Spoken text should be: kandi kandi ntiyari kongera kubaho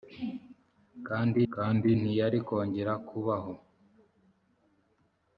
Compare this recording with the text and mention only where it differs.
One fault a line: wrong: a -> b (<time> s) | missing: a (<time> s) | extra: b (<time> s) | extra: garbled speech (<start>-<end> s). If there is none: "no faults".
no faults